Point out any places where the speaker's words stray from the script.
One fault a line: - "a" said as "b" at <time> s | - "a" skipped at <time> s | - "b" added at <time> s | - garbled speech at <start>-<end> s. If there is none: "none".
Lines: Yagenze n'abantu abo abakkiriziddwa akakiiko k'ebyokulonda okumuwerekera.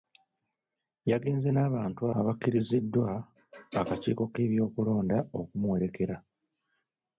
- "abo" skipped at 2.0 s